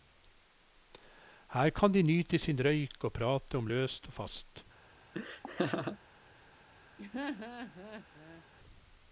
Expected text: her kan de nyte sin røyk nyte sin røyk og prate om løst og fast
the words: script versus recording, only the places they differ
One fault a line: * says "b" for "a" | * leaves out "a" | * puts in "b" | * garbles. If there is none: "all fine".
* leaves out "nyte sin røyk"